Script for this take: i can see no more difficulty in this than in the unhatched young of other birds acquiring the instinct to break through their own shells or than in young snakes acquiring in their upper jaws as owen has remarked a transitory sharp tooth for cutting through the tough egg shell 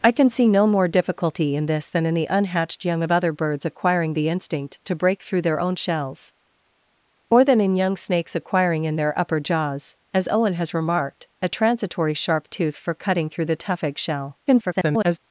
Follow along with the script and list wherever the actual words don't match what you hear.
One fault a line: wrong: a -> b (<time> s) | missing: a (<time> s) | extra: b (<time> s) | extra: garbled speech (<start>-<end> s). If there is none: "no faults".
extra: garbled speech (14.5-15.2 s)